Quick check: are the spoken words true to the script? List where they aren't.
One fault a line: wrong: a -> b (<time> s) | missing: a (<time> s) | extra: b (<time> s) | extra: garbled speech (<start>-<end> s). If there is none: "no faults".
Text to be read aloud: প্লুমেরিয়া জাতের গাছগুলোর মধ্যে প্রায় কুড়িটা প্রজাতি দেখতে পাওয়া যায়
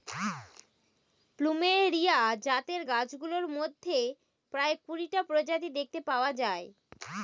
no faults